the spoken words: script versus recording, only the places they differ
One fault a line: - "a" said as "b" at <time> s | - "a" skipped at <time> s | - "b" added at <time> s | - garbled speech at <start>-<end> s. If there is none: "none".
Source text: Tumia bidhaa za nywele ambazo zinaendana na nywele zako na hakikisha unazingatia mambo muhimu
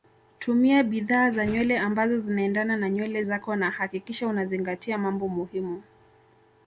none